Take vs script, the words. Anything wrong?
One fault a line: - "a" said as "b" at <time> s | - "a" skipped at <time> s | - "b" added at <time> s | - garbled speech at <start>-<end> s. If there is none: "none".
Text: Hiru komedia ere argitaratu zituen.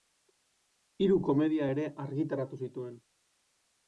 none